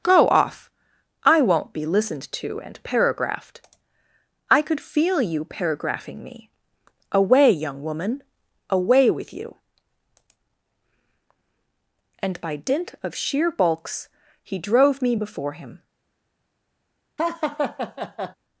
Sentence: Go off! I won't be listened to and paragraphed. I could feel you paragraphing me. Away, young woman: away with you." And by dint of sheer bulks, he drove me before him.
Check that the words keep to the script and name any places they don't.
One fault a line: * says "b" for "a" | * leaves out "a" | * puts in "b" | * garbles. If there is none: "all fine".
all fine